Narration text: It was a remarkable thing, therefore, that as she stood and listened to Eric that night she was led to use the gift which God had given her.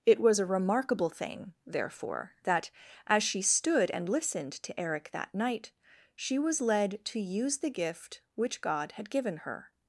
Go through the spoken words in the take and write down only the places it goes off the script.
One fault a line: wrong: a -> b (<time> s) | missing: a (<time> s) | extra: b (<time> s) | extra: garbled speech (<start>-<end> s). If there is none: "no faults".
no faults